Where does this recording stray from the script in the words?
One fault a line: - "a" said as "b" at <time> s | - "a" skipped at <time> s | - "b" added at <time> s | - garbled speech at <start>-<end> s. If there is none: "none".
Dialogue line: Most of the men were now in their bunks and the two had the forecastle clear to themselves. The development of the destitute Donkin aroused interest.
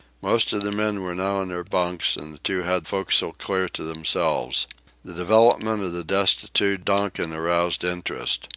- "the" skipped at 2.9 s